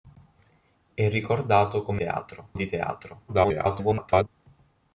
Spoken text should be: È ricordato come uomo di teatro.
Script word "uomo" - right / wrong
wrong